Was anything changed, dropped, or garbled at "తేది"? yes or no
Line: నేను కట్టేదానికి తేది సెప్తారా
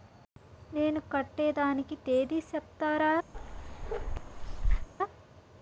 no